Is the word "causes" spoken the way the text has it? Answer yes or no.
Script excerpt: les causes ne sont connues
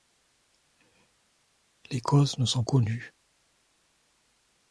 yes